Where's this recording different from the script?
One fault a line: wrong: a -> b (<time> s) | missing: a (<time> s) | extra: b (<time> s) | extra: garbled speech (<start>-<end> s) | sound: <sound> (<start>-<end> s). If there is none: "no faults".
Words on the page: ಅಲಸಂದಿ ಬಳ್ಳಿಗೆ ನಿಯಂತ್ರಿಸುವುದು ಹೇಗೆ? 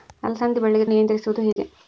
sound: dropout (1.5-1.6 s)